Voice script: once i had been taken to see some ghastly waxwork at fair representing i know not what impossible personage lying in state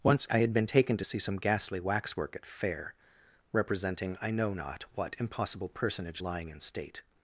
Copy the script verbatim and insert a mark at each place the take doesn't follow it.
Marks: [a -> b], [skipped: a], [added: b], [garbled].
once i had been taken to see some ghastly waxwork at fair representing i know not what impossible personage lying in state